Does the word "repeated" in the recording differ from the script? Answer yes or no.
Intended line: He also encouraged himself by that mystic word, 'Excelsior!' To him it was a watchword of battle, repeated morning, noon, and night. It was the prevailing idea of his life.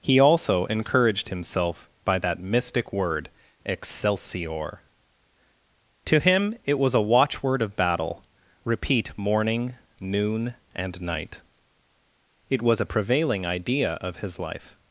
yes